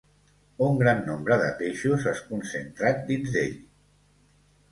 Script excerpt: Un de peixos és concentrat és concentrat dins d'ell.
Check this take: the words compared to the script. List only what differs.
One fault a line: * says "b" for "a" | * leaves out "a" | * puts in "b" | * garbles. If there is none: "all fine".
* puts in "gran nombre"
* leaves out "és concentrat"